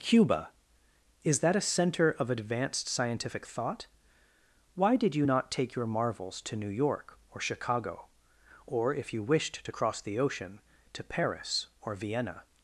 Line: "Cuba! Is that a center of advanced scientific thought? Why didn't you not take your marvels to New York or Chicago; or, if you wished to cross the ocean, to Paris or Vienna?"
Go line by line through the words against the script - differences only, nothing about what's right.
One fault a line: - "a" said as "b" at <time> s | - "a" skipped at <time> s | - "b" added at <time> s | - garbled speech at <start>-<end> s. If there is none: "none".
- "didn't" said as "did" at 5.0 s